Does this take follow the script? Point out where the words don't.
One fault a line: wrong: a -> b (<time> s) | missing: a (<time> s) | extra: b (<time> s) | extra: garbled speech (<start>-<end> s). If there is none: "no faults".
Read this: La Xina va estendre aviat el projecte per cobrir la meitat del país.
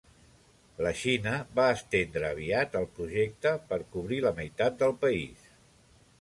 no faults